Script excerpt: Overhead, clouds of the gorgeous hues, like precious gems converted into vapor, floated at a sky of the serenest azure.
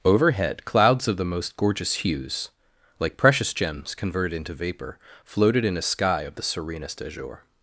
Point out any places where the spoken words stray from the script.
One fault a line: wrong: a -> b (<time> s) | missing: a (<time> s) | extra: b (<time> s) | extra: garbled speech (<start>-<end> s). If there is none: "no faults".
extra: most (1.2 s)
wrong: at -> in (5.6 s)